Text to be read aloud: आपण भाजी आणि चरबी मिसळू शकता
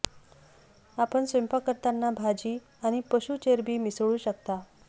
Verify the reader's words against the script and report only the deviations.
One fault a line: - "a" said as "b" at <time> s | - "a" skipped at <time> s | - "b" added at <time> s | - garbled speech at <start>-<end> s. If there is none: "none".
- "स्वयंपाक करताना" added at 1.2 s
- "पशू" added at 3.1 s